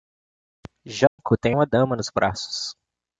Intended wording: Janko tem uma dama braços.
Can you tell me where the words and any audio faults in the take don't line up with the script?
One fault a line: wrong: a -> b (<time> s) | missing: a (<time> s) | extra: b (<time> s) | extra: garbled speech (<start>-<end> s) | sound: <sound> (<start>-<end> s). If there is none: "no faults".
sound: dropout (1.1-1.2 s)
extra: nos (2.0 s)